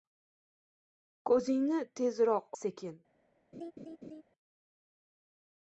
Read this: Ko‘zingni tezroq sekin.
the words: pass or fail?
pass